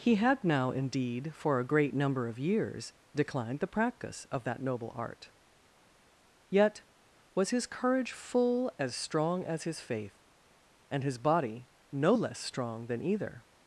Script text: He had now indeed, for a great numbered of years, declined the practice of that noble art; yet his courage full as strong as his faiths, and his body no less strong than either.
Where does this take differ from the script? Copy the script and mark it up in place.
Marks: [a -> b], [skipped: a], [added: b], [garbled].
He had now indeed, for a great [numbered -> number] of years, declined the practice of that noble art; yet [added: was] his courage full as strong as his [faiths, -> faith] and his body no less strong than either.